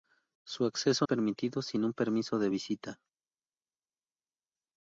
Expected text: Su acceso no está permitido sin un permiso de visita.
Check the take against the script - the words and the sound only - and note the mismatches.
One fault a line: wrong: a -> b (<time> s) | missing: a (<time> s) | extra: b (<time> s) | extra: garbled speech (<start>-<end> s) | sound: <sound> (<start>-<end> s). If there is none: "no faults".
missing: no está (1.1 s)